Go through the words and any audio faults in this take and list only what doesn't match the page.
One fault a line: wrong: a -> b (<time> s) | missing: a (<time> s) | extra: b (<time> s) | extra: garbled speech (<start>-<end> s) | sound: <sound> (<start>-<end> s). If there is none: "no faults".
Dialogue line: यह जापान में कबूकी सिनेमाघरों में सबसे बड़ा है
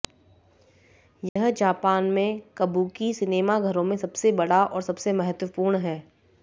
sound: dropout (1.3-1.4 s)
extra: और सबसे महत्वपूर्ण (4.7 s)